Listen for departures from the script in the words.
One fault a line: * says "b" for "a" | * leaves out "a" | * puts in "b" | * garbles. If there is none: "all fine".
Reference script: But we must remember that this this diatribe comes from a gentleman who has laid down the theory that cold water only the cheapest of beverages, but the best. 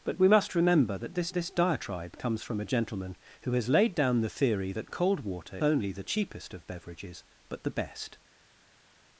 all fine